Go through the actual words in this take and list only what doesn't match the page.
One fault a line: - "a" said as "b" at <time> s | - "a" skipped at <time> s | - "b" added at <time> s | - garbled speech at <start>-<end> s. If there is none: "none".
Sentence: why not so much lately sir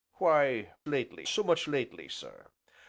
- "not" said as "lately" at 0.9 s